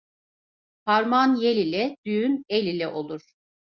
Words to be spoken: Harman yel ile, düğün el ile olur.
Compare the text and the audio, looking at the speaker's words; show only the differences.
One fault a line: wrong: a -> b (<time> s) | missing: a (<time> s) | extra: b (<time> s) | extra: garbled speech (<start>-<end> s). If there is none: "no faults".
no faults